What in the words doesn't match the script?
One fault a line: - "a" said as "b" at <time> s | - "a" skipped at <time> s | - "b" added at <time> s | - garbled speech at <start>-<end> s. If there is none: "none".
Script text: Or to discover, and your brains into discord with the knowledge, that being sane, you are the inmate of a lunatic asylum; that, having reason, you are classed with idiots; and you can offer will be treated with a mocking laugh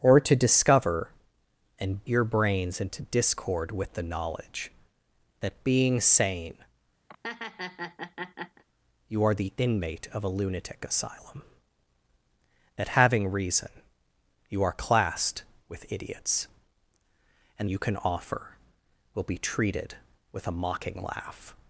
none